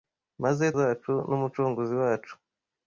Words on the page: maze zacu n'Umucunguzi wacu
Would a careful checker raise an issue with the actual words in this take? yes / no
no